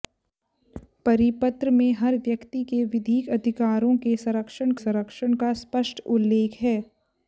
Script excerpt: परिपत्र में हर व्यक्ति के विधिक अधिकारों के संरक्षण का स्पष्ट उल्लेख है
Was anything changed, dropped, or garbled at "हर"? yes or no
no